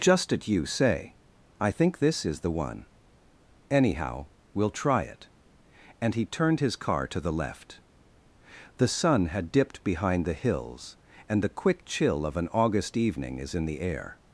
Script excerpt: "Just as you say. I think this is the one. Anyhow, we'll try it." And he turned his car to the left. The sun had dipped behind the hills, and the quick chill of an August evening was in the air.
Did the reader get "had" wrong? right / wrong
right